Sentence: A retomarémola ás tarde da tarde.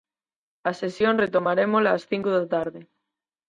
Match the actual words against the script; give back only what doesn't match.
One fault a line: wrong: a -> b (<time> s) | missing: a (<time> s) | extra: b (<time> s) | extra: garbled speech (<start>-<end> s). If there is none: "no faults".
extra: sesión (0.8 s)
wrong: tarde -> cinco (2.1 s)